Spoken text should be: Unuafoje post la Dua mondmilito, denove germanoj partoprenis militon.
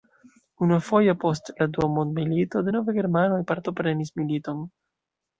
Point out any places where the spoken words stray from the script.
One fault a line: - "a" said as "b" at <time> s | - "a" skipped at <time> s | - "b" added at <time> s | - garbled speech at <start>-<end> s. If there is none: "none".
none